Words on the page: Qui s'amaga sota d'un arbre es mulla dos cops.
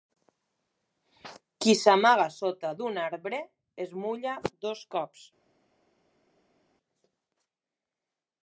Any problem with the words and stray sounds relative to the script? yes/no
no